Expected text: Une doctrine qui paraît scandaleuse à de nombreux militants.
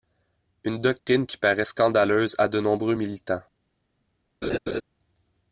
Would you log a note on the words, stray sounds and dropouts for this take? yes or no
yes